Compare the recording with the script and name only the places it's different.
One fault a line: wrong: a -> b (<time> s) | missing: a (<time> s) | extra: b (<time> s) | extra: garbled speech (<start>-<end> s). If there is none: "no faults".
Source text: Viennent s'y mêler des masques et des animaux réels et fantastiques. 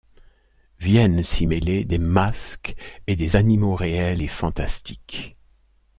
no faults